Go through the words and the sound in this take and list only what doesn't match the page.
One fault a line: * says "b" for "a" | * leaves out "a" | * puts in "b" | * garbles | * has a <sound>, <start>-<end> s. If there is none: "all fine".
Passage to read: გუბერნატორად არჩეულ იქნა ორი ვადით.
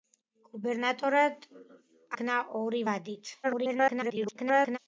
* leaves out "არჩეულ"
* garbles